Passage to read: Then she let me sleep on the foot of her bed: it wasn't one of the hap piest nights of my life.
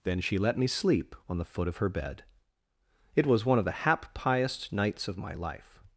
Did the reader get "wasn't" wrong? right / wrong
wrong